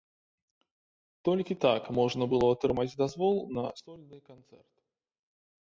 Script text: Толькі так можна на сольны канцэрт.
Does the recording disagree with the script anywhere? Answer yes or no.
yes